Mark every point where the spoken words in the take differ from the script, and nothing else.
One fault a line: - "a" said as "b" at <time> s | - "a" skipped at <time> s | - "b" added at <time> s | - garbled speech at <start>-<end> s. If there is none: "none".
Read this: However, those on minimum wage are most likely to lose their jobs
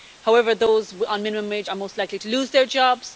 none